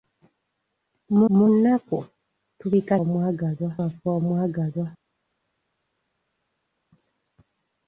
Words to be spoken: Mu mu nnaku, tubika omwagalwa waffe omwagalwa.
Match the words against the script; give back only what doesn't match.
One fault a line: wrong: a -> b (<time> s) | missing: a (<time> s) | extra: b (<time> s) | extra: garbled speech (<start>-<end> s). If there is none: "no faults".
no faults